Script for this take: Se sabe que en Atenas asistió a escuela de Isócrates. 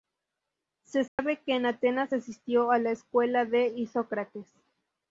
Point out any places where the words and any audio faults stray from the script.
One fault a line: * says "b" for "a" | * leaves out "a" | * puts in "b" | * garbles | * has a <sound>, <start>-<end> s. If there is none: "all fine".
* has a dropout, 1.1-1.2 s
* puts in "la"